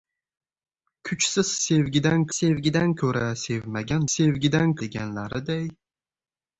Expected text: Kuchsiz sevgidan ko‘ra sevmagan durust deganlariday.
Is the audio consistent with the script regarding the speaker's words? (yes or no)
no